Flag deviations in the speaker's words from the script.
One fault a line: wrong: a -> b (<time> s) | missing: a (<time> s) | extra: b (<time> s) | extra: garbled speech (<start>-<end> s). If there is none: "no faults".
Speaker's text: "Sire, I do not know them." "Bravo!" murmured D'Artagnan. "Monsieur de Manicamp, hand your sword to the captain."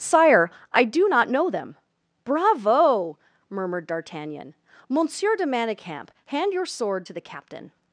no faults